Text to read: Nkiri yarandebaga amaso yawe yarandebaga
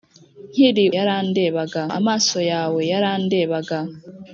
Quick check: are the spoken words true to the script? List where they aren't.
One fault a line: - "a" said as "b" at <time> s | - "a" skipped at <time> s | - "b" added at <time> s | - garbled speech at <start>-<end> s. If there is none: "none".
none